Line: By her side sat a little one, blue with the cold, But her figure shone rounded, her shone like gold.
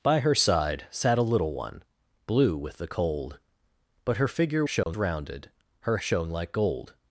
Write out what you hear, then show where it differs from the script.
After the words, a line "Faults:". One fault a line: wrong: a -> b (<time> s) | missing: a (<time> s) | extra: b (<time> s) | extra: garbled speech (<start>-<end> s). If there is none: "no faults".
By her side sat a little one, blue with the cold, But her figure shone rounded, her shone like gold.
Faults:
no faults